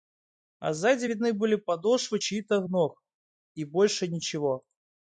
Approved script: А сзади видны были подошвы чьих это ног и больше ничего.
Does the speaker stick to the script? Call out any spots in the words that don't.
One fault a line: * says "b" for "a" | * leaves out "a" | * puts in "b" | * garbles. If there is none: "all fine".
* says "то" for "это"